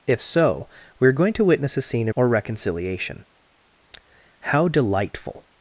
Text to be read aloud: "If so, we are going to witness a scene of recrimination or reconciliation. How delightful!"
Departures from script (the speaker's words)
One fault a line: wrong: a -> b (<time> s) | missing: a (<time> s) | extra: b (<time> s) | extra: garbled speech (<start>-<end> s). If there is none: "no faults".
missing: of recrimination (2.1 s)